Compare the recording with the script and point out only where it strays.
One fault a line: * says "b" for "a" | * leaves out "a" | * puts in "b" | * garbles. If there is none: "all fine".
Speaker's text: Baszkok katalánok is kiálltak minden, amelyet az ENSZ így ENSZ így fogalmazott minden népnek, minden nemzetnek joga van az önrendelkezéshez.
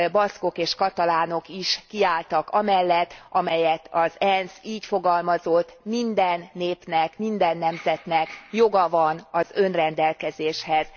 * puts in "és"
* says "amellett" for "minden"
* leaves out "ENSZ így"